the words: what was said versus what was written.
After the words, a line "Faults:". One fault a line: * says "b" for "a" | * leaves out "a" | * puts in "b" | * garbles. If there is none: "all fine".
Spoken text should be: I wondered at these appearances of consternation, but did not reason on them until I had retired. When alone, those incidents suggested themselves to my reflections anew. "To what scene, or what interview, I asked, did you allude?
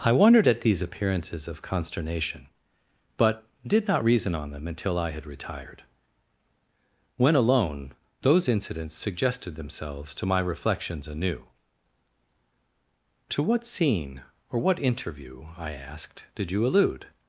I wondered at these appearances of consternation, but did not reason on them until I had retired. When alone, those incidents suggested themselves to my reflections anew. "To what scene, or what interview, I asked, did you allude?
Faults:
all fine